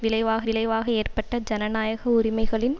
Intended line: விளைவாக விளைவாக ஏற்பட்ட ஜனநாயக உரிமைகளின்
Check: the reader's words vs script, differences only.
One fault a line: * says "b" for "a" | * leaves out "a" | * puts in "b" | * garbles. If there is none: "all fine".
all fine